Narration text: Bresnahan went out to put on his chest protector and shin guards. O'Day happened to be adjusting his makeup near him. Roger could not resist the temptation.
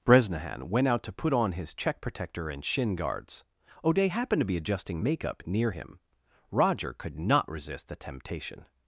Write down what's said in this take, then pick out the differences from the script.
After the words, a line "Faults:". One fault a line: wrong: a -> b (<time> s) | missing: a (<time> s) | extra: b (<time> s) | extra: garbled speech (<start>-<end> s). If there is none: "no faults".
Bresnahan went out to put on his check protector and shin guards. O'Day happened to be adjusting makeup near him. Roger could not resist the temptation.
Faults:
wrong: chest -> check (1.8 s)
missing: his (5.0 s)